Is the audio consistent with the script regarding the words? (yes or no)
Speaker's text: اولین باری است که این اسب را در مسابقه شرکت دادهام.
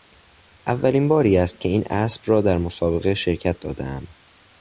yes